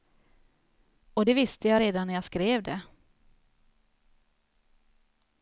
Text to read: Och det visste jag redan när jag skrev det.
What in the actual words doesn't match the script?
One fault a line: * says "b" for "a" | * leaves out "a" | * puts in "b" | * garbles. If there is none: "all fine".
all fine